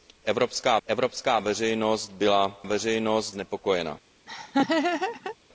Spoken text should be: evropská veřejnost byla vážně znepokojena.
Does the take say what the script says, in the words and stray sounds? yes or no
no